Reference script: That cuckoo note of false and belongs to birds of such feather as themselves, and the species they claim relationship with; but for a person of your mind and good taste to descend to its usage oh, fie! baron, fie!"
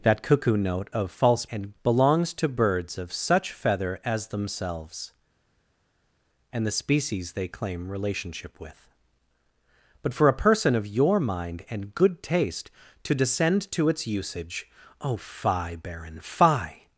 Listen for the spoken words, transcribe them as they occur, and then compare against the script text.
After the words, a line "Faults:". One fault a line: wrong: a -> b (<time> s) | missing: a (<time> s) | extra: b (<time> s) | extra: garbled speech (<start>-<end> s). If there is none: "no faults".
That cuckoo note of false and belongs to birds of such feather as themselves, and the species they claim relationship with; but for a person of your mind and good taste to descend to its usage oh, fie! baron, fie!"
Faults:
no faults